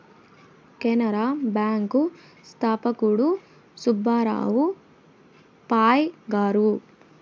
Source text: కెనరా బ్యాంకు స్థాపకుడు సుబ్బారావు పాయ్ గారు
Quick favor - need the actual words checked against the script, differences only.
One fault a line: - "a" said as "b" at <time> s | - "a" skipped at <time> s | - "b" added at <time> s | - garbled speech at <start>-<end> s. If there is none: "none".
none